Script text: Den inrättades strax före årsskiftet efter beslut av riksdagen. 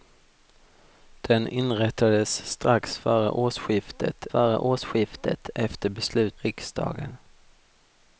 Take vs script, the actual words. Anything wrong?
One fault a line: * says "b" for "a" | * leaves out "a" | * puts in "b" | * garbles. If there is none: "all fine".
* puts in "före årsskiftet"
* leaves out "av"